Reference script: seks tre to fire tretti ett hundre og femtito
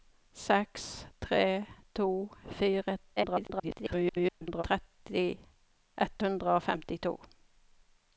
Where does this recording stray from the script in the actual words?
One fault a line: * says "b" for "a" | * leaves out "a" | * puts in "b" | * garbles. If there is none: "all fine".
* garbles